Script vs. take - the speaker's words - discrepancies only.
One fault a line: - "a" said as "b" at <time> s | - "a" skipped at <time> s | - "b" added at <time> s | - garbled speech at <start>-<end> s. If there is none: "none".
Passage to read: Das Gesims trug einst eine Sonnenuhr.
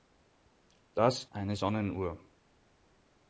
- "Gesims trug einst" skipped at 1.3 s